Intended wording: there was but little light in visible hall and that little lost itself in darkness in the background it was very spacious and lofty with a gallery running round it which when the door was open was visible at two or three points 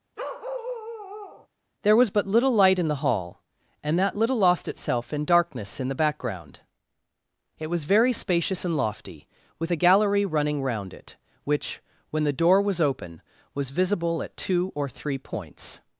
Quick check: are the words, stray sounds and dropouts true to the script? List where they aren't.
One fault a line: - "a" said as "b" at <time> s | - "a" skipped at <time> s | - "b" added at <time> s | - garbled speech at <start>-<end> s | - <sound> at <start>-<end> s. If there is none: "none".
- bark at 0.2-1.5 s
- "visible" said as "the" at 2.9 s